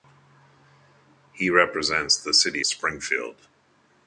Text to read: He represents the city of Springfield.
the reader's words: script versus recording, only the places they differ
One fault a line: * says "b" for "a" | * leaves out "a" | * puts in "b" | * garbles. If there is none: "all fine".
* leaves out "of"